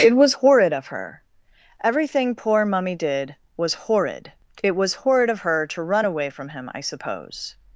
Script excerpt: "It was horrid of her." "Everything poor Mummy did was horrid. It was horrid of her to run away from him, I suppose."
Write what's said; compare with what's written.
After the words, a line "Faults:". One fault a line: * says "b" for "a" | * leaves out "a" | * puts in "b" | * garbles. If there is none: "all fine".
"It was horrid of her." "Everything poor Mummy did was horrid. It was horrid of her to run away from him, I suppose."
Faults:
all fine